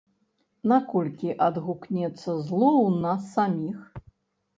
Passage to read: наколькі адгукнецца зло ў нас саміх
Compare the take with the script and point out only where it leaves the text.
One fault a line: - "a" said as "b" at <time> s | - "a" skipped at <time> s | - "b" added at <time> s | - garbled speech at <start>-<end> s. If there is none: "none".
none